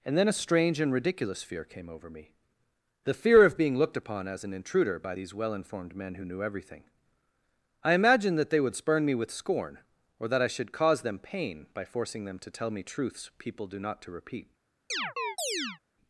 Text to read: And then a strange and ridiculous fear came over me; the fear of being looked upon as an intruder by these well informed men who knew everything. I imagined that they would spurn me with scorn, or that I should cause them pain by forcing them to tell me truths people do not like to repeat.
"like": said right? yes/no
no